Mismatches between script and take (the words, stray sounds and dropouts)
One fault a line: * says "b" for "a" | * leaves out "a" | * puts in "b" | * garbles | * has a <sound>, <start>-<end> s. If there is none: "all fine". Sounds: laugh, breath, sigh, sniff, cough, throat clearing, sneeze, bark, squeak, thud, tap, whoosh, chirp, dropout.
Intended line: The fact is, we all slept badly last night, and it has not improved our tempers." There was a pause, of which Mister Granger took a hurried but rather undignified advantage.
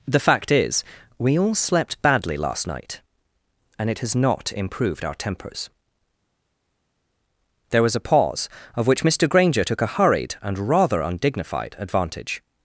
* says "and" for "but"